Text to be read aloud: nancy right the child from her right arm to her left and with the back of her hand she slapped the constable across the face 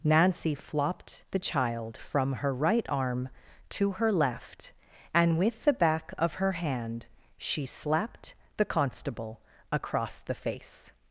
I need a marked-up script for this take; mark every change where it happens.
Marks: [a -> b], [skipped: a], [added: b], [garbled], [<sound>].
nancy [right -> flopped] the child from her right arm to her left and with the back of her hand she slapped the constable across the face